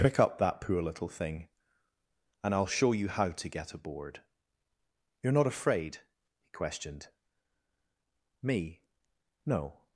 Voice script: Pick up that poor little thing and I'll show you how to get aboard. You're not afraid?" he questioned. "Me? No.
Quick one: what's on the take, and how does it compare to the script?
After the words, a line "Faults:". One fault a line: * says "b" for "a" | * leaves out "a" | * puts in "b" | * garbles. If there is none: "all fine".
Pick up that poor little thing and I'll show you how to get aboard. You're not afraid?" he questioned. "Me? No.
Faults:
all fine